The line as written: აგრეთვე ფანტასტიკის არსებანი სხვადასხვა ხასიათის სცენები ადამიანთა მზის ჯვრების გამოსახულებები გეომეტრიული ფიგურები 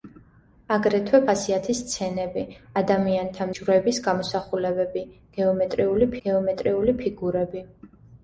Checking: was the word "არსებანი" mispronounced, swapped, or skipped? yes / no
yes